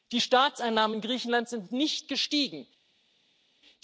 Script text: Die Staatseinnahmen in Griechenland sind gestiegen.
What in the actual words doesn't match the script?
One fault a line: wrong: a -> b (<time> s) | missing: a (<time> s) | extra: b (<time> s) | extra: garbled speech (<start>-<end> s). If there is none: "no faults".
extra: nicht (1.7 s)